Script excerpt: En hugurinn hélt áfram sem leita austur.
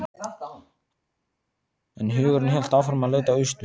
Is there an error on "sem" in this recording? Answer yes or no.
yes